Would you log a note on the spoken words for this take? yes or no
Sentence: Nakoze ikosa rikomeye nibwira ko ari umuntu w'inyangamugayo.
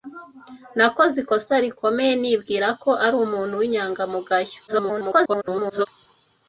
yes